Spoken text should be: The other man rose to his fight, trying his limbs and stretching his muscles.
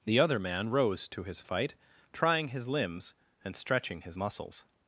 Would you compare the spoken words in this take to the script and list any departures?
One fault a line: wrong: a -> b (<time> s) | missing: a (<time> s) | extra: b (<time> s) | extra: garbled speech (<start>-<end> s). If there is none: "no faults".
no faults